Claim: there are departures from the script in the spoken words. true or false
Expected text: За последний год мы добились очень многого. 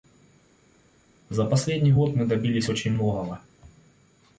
false